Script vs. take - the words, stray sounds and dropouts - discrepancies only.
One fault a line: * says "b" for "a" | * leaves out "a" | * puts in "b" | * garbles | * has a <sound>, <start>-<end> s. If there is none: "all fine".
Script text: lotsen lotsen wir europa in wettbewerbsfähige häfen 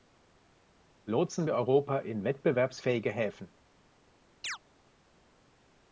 * leaves out "lotsen"
* has a chirp, 4.4-4.6 s